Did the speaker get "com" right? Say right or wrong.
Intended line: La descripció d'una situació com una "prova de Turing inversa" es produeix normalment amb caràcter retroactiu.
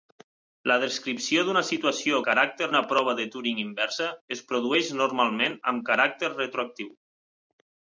wrong